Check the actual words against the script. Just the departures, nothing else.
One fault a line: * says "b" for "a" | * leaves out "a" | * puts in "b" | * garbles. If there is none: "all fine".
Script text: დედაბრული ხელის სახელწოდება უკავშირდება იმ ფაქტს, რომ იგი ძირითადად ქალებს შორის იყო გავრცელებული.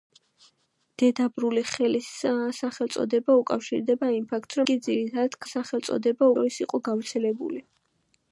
* leaves out "რომ"
* says "სახელწოდება" for "ქალებს"